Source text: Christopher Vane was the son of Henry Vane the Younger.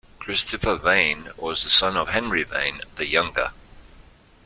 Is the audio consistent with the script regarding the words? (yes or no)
yes